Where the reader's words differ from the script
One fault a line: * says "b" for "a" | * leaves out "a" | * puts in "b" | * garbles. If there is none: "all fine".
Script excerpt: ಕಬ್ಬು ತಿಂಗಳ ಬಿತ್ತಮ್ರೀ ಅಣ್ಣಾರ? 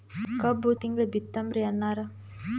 all fine